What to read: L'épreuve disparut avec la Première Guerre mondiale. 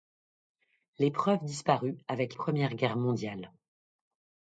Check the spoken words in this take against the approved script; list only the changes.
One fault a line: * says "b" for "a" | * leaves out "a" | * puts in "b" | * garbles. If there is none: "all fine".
* leaves out "la"